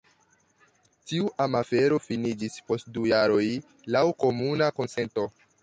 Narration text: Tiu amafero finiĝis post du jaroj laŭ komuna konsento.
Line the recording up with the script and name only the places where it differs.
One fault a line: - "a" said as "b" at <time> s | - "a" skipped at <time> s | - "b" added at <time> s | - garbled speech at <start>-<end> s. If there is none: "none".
none